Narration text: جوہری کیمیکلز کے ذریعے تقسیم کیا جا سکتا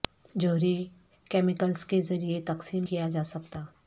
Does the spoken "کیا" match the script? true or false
true